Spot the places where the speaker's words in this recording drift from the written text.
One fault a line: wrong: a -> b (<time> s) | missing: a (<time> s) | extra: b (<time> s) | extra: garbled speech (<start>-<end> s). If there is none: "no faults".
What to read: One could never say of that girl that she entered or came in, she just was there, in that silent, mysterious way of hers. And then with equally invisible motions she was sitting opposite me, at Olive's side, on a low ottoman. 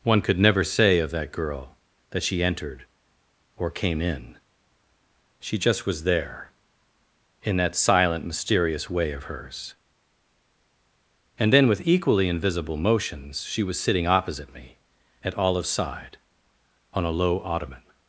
no faults